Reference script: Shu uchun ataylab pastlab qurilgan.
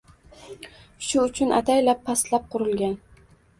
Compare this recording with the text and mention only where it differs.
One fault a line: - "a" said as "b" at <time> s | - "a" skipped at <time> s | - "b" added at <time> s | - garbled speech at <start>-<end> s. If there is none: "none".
none